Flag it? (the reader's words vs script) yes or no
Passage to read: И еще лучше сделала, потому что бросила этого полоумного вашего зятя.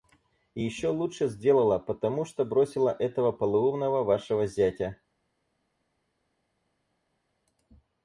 no